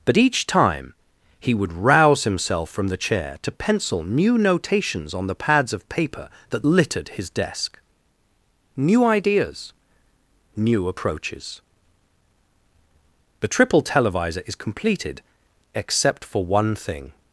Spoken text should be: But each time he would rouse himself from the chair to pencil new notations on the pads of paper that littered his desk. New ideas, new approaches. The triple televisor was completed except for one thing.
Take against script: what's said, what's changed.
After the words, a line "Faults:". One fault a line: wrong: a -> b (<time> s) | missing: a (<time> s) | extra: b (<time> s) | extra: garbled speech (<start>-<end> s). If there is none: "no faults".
But each time he would rouse himself from the chair to pencil new notations on the pads of paper that littered his desk. New ideas, new approaches. The triple televisor is completed except for one thing.
Faults:
wrong: was -> is (14.5 s)